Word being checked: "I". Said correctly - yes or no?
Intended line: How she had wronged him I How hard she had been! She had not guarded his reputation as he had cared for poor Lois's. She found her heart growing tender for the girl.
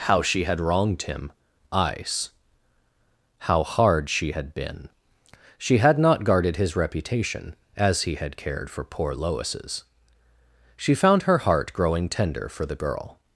no